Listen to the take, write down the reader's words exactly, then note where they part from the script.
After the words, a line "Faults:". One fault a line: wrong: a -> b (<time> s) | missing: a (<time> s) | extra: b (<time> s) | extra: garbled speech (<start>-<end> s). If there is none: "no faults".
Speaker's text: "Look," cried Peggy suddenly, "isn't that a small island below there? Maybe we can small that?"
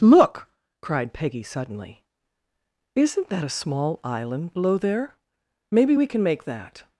"Look," cried Peggy suddenly, "isn't that a small island below there? Maybe we can make that?"
Faults:
wrong: small -> make (6.2 s)